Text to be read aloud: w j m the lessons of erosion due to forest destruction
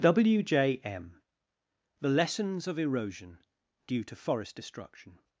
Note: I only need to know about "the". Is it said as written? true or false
true